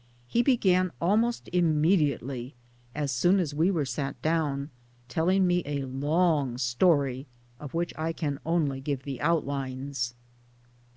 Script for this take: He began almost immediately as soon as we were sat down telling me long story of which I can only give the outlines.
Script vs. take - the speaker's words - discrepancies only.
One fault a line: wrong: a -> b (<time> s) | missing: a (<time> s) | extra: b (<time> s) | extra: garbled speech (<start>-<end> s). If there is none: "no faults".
extra: a (5.7 s)